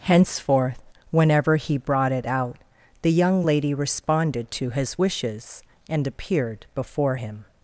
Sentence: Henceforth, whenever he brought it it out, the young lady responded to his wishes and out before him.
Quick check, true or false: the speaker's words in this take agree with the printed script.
false